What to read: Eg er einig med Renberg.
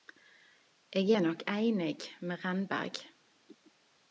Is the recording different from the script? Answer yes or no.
yes